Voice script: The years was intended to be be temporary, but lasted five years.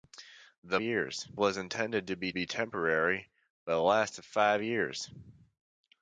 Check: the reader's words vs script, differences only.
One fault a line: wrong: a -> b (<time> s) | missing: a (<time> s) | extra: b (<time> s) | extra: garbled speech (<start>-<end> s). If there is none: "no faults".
no faults